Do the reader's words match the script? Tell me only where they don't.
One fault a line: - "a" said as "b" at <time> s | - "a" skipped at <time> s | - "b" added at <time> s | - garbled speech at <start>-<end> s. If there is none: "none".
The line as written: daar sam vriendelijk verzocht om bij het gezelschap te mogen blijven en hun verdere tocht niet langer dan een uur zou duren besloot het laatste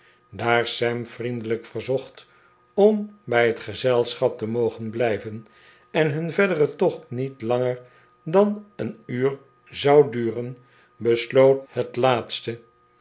none